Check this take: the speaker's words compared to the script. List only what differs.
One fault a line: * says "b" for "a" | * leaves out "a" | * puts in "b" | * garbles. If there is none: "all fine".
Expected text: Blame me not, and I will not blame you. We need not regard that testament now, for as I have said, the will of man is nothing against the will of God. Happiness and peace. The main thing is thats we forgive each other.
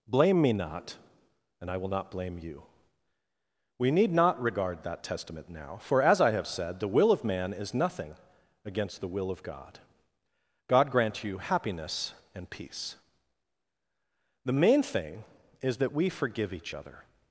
* puts in "God grant you"
* says "that" for "thats"